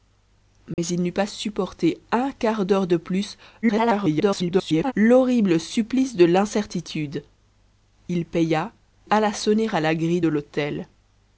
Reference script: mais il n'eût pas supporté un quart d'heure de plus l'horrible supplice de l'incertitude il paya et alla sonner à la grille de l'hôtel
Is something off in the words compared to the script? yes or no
yes